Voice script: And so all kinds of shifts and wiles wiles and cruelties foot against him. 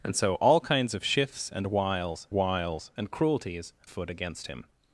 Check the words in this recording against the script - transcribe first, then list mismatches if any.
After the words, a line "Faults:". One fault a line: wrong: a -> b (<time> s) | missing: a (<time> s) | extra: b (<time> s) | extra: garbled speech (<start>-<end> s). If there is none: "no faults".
And so all kinds of shifts and wiles wiles and cruelties foot against him.
Faults:
no faults